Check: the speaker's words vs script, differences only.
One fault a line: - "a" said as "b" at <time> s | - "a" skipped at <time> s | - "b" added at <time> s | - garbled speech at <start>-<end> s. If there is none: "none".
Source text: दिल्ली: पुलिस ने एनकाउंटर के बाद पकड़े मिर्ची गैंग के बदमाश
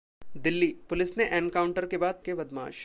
- "पकड़े मिर्ची गैंग" skipped at 2.2 s